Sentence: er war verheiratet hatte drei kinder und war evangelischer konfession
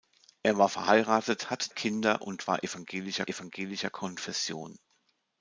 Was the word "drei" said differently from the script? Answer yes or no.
yes